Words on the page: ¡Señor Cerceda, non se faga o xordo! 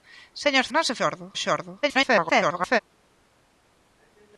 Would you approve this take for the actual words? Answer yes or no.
no